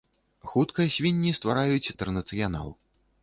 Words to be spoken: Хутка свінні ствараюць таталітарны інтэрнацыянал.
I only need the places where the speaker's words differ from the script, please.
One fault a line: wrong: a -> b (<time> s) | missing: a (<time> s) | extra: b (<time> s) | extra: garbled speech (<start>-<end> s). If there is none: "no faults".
missing: таталітарны (1.9 s)